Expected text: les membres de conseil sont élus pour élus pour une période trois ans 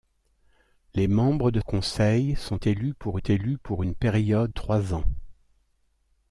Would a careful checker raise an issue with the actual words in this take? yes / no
no